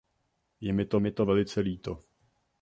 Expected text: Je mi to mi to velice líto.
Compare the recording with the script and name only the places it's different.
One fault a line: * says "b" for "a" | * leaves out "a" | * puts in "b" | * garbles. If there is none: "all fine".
all fine